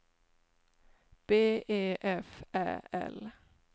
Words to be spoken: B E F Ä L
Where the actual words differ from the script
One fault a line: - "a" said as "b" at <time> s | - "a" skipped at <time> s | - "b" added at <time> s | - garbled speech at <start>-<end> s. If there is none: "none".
none